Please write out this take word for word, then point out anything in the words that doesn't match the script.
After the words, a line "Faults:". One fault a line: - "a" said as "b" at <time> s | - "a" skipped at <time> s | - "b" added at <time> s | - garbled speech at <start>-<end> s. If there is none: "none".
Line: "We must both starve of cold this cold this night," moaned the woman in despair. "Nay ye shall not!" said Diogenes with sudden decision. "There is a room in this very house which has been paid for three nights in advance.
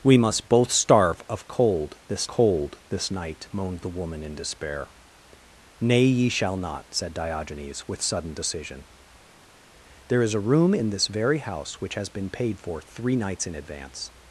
"We must both starve of cold this cold this night," moaned the woman in despair. "Nay ye shall not!" said Diogenes with sudden decision. "There is a room in this very house which has been paid for three nights in advance.
Faults:
none